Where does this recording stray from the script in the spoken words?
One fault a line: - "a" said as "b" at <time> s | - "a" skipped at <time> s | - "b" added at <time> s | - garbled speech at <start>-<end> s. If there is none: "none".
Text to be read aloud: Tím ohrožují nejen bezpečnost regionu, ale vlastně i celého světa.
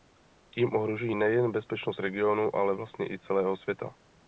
none